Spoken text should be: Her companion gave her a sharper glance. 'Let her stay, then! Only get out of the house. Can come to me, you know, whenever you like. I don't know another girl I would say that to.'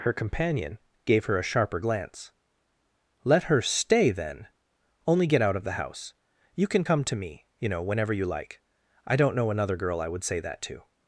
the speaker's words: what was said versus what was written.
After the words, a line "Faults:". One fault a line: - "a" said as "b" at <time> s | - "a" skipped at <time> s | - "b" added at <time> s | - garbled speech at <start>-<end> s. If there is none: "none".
Her companion gave her a sharper glance. 'Let her stay, then! Only get out of the house. You can come to me, you know, whenever you like. I don't know another girl I would say that to.'
Faults:
- "You" added at 6.5 s